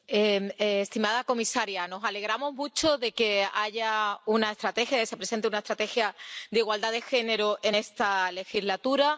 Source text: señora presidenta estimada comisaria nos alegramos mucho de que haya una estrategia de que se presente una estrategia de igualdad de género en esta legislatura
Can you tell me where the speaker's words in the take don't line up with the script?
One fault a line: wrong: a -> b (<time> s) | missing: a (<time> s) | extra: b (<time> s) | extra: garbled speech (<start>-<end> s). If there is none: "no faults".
no faults